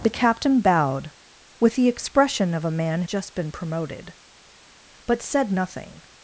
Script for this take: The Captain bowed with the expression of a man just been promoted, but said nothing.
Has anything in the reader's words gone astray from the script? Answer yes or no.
no